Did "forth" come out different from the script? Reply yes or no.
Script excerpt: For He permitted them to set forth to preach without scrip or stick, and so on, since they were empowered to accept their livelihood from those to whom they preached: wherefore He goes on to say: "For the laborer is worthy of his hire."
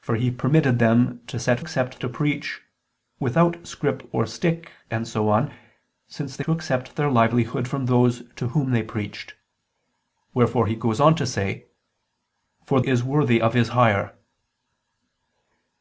yes